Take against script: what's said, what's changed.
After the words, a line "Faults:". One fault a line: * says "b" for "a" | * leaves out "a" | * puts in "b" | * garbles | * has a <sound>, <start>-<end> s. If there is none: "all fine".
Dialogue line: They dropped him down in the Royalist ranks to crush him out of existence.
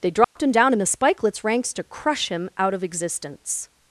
They dropped him down in the Spikelets ranks to crush him out of existence.
Faults:
* has a dropout, 0.2-0.4 s
* says "Spikelets" for "Royalist"